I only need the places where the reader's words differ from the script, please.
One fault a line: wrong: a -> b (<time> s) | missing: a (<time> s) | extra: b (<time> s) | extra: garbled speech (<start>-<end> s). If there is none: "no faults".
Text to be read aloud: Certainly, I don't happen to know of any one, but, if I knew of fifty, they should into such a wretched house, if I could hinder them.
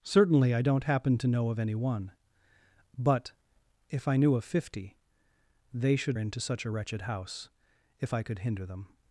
no faults